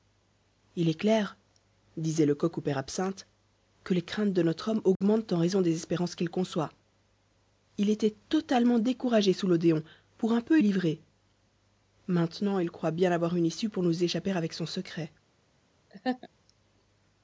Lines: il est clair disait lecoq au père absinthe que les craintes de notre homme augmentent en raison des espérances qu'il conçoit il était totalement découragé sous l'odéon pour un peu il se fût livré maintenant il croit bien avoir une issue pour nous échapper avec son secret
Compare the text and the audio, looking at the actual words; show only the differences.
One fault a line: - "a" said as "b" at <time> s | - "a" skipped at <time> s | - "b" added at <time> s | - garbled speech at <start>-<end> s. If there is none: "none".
- "il se fût" skipped at 10.6 s